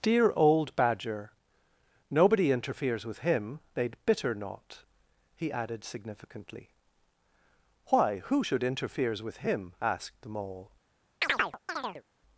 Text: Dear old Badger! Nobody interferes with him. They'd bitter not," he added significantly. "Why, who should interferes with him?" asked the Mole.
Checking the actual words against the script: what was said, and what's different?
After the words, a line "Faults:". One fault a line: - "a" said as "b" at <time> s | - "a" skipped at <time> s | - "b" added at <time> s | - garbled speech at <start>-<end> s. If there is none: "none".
Dear old Badger! Nobody interferes with him. They'd bitter not," he added significantly. "Why, who should interferes with him?" asked the Mole.
Faults:
none